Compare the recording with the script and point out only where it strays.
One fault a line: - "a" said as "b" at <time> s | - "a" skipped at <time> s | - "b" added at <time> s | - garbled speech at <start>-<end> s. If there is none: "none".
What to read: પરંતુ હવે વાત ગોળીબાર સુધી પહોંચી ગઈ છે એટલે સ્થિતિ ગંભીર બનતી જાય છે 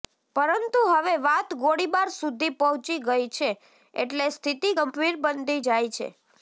none